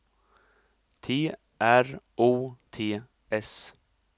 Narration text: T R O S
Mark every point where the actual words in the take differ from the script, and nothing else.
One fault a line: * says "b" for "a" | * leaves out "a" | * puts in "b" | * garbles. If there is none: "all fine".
* puts in "T"